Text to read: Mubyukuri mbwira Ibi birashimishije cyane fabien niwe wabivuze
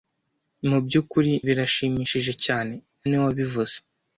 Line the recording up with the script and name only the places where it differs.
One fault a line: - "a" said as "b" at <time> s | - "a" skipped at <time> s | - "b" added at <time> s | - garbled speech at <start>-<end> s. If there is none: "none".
- "mbwira Ibi" skipped at 1.3 s
- "fabien" skipped at 2.7 s